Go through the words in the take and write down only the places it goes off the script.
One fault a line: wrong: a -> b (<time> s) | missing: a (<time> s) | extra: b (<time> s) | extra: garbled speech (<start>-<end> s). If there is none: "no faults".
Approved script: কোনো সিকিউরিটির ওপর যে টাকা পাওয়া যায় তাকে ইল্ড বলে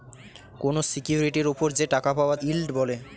missing: যায় তাকে (2.4 s)